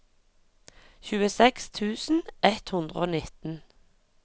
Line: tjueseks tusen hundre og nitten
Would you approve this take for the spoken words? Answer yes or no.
no